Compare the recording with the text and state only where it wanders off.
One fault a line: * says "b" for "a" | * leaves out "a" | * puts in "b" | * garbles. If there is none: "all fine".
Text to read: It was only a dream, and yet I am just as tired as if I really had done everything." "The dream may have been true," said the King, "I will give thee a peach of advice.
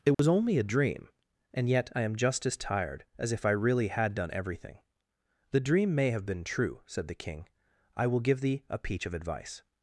all fine